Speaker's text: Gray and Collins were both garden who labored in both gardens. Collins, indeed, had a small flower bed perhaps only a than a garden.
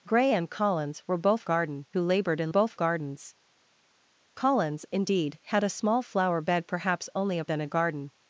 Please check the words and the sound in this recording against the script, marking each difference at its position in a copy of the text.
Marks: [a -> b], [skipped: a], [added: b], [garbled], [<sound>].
Gray and Collins were both garden who labored in both gardens. Collins, indeed, had a small flower bed perhaps only a than a garden.